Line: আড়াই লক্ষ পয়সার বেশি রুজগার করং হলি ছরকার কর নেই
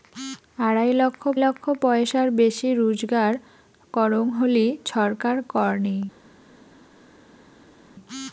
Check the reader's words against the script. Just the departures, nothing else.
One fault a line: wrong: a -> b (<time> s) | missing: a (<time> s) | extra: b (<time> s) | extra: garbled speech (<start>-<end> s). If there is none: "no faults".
extra: লক্ষ (1.4 s)